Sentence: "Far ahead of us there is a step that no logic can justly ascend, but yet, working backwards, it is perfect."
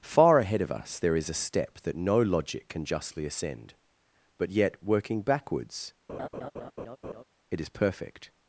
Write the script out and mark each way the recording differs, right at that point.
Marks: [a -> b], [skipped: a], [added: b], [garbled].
"Far ahead of us there is a step that no logic can justly ascend, but yet, working backwards, it is perfect."